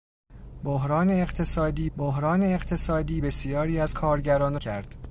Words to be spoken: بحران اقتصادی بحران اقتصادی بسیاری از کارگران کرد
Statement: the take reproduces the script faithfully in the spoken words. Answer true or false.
true